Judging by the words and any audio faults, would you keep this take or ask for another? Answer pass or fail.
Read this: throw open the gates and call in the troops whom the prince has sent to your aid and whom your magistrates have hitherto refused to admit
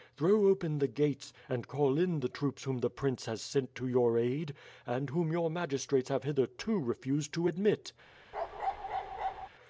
fail